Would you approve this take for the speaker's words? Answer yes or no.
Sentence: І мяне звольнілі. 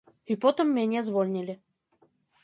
no